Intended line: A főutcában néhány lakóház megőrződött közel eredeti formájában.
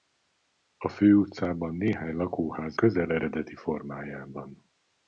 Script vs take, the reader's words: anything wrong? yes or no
yes